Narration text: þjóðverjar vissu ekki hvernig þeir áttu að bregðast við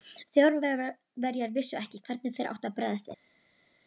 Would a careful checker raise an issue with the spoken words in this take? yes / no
no